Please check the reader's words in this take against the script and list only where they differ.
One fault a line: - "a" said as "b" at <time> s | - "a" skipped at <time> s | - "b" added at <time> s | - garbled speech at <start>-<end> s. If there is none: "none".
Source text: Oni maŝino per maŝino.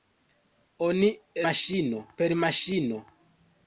none